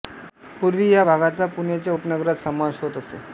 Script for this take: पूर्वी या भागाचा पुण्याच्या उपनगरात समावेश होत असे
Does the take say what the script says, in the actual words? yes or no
yes